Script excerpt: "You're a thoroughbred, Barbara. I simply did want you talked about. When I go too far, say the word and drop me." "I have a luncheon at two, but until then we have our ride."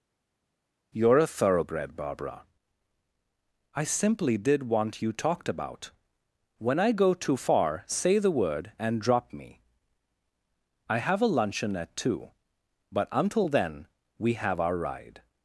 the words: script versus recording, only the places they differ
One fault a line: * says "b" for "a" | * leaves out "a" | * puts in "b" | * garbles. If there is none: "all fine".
all fine